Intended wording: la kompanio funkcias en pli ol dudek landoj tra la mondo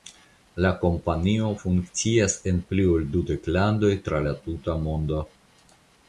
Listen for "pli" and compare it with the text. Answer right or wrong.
right